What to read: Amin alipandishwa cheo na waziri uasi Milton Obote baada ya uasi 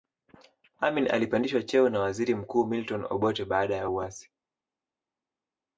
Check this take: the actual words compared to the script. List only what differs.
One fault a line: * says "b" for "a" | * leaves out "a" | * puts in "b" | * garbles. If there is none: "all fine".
* says "mkuu" for "uasi"